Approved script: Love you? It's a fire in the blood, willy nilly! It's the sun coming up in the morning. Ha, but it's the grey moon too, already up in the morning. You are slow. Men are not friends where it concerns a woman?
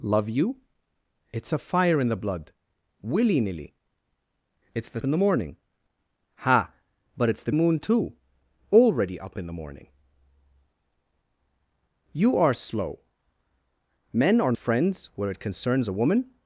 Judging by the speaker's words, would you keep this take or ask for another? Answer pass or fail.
fail